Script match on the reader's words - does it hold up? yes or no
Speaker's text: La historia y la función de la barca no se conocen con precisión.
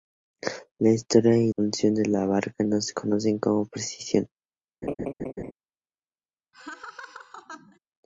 no